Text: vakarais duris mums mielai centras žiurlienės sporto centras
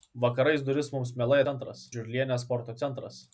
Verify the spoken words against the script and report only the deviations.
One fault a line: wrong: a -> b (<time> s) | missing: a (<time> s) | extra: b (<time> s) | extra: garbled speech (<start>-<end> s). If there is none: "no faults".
no faults